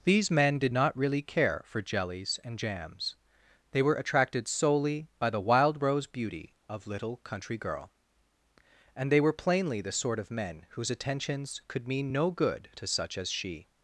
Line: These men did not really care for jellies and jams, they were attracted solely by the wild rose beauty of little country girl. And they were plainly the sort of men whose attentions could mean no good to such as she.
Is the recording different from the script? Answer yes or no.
no